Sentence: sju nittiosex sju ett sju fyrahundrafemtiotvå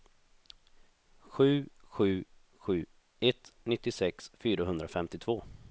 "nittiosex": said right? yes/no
no